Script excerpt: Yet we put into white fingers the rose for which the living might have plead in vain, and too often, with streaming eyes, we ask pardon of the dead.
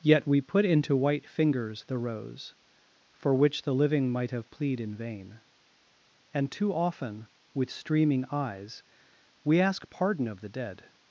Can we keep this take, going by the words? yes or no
yes